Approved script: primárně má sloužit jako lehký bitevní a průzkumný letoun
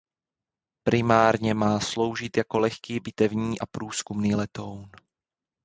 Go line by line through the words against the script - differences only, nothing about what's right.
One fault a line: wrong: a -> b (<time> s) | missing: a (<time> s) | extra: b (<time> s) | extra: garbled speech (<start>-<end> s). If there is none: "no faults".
no faults